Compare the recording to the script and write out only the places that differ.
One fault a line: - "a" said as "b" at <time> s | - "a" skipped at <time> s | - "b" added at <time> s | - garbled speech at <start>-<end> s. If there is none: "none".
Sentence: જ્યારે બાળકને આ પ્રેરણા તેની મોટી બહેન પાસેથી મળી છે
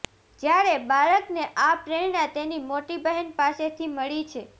none